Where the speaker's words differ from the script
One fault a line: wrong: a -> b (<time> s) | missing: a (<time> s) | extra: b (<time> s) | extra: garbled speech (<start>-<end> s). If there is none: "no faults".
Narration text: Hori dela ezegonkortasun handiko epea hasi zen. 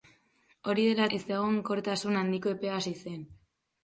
no faults